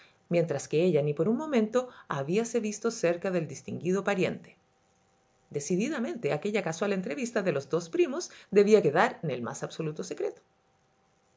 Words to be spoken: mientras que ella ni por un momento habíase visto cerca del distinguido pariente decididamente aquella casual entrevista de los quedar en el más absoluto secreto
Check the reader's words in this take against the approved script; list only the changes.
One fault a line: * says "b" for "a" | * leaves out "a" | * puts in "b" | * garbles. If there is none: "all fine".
* puts in "dos primos debía"